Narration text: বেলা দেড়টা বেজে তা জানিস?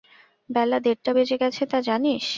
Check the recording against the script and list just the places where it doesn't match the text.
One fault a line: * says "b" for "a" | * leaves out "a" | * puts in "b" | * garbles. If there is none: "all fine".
* puts in "গেছে"